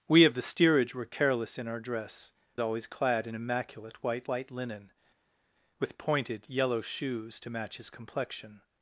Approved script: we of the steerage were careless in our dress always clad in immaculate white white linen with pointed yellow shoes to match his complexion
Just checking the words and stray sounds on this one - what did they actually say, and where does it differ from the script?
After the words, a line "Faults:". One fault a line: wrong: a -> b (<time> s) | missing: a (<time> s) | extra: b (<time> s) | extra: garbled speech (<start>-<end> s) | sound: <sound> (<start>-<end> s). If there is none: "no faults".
we of the steerage were careless in our dress always clad in immaculate white white linen with pointed yellow shoes to match his complexion
Faults:
no faults